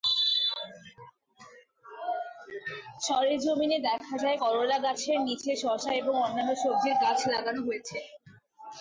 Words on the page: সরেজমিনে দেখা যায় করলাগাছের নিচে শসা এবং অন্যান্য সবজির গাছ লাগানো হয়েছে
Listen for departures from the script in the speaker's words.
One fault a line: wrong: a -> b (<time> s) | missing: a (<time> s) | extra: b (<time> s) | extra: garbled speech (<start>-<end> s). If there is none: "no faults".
no faults